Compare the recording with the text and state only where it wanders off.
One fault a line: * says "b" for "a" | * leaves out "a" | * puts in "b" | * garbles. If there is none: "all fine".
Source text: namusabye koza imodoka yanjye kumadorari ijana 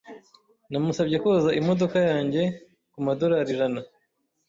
all fine